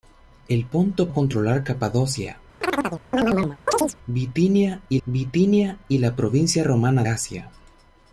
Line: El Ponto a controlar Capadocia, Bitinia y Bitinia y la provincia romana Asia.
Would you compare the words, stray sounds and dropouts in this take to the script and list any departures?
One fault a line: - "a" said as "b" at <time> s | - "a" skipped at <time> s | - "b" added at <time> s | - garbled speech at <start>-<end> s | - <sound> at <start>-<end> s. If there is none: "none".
- chirp at 2.6-4.0 s